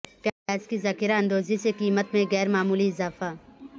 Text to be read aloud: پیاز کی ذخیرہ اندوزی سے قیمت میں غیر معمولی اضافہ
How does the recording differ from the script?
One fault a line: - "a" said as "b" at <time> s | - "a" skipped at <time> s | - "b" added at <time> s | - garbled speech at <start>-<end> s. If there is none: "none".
none